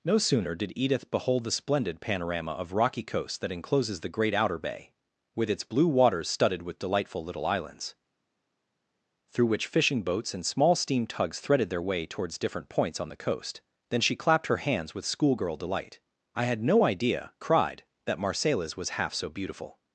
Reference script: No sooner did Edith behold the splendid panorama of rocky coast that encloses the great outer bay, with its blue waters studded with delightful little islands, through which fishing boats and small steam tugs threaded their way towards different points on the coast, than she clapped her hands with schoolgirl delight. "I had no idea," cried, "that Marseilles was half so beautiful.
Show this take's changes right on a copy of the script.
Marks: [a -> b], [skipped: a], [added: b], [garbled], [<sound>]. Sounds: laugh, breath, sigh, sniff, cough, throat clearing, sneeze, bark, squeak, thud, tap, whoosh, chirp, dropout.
No sooner did Edith behold the splendid panorama of rocky coast that encloses the great outer bay, with its blue waters studded with delightful little islands, through which fishing boats and small steam tugs threaded their way towards different points on the coast, than she clapped her hands with schoolgirl delight. "I had no idea," cried, "that Marseilles was half so beautiful.